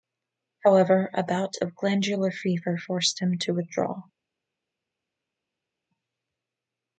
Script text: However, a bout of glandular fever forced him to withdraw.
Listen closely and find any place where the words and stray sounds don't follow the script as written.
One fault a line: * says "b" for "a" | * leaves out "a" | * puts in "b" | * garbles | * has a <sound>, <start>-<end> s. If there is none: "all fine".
all fine